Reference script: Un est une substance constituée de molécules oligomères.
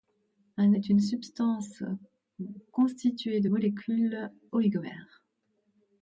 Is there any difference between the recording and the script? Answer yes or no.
no